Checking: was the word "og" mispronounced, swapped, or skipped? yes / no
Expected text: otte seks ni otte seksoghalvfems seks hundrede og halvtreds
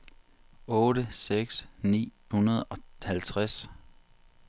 no